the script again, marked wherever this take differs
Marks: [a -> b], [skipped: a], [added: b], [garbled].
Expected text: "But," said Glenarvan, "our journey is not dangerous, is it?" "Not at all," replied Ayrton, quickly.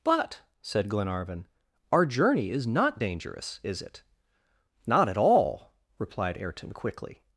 "But," said Glenarvan, "our journey is not dangerous, is it?" "Not at all," replied Ayrton, quickly.